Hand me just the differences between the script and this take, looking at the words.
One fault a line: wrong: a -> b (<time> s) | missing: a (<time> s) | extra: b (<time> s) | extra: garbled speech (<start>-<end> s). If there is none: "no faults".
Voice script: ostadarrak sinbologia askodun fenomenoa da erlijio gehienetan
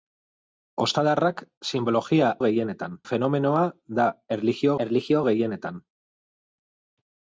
wrong: askodun -> gehienetan (2.5 s)
extra: erlijio (4.9 s)